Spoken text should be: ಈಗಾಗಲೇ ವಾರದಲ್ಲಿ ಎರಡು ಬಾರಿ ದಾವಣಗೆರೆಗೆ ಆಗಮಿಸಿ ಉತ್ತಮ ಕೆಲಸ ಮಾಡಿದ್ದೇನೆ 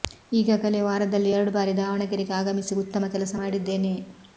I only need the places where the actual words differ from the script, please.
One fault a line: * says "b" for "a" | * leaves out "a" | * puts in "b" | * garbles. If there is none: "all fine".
all fine